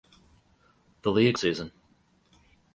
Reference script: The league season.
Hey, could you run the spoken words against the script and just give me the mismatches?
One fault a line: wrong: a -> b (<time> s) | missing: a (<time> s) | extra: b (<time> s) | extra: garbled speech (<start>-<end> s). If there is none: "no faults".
no faults